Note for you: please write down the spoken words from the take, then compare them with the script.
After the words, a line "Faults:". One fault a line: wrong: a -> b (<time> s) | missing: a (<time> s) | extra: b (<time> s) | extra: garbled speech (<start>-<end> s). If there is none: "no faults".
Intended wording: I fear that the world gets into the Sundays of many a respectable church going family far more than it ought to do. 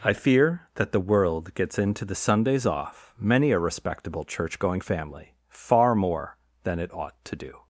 I fear that the world gets into the Sundays off many a respectable church going family far more than it ought to do.
Faults:
wrong: of -> off (2.6 s)